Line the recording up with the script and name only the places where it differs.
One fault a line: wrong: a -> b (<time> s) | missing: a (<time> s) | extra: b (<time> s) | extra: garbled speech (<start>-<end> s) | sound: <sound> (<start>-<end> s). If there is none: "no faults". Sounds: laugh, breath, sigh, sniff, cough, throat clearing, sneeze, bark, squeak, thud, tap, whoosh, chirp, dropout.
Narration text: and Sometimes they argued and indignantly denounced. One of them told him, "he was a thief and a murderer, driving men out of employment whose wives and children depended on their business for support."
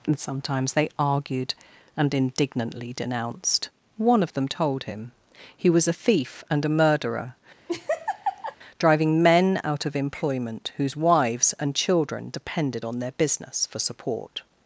sound: laugh (7.7-8.6 s)